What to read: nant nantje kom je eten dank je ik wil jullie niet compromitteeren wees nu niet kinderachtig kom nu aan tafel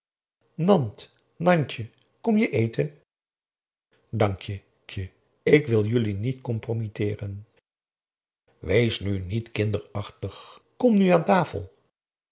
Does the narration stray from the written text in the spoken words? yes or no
yes